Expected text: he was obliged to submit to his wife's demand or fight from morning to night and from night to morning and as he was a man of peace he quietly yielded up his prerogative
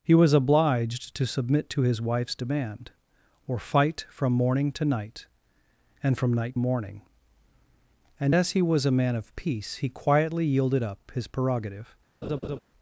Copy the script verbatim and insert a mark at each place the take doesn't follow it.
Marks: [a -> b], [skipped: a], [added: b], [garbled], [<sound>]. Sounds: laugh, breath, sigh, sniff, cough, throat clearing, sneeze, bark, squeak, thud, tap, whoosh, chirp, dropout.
he was obliged to submit to his wife's demand or fight from morning to night and from night [skipped: to] morning and as he was a man of peace he quietly yielded up his prerogative [laugh]